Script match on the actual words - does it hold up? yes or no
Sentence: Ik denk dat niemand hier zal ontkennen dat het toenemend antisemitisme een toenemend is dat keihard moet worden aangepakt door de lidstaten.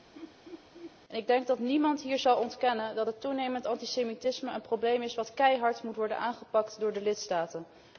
no